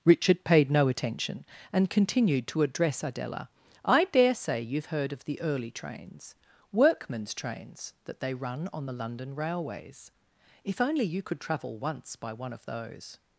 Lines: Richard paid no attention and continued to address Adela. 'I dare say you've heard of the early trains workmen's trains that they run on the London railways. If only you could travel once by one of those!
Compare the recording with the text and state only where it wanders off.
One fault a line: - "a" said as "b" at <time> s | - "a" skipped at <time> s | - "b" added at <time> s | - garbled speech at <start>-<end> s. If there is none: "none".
none